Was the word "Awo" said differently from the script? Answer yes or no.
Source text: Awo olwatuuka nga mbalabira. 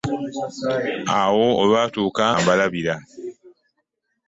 no